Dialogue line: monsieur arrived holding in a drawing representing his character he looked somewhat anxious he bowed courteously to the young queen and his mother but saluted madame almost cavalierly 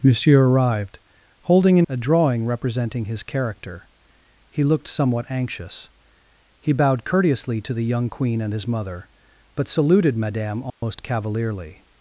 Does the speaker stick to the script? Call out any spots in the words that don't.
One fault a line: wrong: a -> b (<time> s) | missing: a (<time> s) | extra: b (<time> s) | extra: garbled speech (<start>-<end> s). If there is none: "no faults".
no faults